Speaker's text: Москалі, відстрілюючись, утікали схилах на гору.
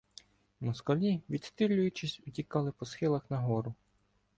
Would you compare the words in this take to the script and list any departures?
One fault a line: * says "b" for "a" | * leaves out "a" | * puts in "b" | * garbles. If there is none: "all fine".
* puts in "по"